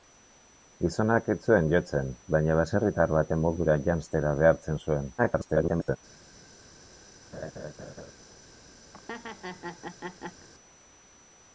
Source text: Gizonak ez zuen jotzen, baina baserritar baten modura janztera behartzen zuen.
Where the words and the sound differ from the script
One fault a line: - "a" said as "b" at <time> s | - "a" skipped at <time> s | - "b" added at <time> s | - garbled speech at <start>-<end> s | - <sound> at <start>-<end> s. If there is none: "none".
- garbled speech at 5.2-6.0 s
- laugh at 7.3-8.1 s
- laugh at 8.9-10.5 s